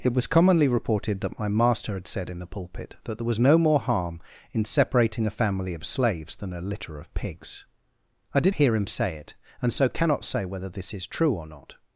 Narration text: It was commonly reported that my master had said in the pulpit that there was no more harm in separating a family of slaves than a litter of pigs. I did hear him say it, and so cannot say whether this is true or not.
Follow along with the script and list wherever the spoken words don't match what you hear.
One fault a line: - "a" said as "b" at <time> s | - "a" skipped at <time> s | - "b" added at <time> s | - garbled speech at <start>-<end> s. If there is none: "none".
none